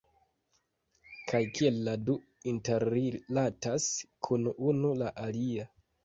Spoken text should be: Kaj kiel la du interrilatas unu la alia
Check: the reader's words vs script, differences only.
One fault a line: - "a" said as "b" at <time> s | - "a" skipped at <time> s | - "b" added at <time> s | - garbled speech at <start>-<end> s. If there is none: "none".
- "kun" added at 4.3 s